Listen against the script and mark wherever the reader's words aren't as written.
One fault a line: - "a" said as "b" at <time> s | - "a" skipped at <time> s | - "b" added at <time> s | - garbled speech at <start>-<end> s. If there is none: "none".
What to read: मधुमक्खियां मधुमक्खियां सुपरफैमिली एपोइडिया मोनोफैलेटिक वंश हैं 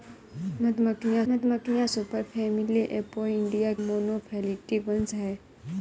none